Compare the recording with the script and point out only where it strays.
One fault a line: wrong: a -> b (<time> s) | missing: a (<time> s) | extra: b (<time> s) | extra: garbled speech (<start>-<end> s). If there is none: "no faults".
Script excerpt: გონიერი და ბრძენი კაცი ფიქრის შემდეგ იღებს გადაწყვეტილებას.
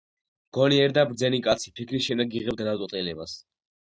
no faults